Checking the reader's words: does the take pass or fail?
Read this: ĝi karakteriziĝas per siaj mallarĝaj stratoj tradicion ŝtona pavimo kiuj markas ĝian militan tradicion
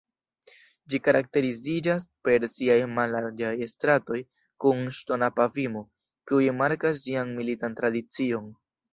fail